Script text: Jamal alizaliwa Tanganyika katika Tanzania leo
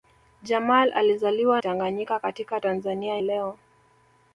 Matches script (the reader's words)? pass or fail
pass